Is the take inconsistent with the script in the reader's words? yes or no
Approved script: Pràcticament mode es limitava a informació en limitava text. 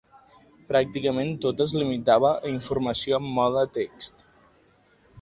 yes